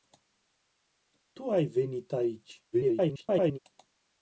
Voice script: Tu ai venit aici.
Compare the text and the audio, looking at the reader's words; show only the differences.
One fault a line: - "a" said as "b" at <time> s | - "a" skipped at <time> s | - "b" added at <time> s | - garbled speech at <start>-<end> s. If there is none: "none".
- garbled speech at 2.7-3.6 s